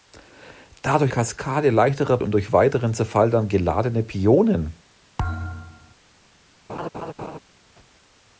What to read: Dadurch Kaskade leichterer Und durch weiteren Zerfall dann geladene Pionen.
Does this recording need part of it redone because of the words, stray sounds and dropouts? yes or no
yes